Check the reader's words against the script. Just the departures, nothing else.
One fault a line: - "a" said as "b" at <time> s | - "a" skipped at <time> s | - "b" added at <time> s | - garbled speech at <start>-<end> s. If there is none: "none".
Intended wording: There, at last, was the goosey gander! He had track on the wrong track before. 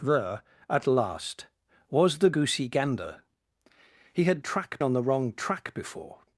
none